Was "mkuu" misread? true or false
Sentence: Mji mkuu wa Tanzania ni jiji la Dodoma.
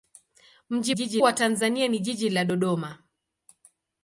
true